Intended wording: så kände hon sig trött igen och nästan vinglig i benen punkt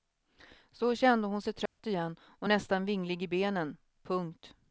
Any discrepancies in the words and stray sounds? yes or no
yes